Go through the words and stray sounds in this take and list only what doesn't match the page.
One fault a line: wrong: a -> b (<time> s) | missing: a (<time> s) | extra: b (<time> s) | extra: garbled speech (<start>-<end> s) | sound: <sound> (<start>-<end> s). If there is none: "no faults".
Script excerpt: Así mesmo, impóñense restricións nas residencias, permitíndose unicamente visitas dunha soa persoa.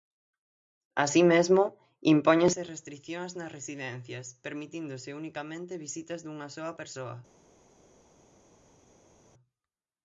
no faults